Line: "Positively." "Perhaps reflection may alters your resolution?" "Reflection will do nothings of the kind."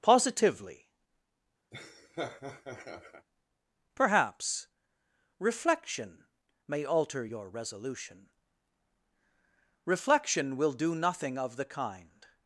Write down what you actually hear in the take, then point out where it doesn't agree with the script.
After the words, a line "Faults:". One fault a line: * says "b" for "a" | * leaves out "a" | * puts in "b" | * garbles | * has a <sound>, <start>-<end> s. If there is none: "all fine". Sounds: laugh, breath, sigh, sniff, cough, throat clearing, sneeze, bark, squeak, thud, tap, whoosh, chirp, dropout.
"Positively." "Perhaps reflection may alter your resolution?" "Reflection will do nothing of the kind."
Faults:
* has a laugh, 1.7-3.3 s
* says "alter" for "alters"
* says "nothing" for "nothings"